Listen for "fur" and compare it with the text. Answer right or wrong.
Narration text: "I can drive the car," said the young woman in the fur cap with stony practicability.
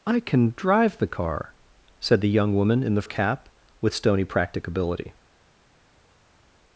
wrong